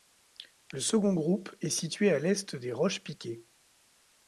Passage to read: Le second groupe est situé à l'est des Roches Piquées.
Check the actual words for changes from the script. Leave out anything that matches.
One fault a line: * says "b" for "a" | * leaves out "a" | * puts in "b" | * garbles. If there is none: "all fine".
all fine